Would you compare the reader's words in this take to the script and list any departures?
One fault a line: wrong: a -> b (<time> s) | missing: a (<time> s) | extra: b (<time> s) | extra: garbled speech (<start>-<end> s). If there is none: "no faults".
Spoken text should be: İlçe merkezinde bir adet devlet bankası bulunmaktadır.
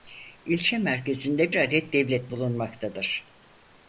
missing: bir (1.5 s)
missing: bankası (2.3 s)